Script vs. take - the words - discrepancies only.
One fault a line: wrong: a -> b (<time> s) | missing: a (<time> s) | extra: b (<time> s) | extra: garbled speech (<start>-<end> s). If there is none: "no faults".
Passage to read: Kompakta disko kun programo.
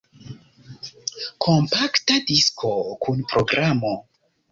no faults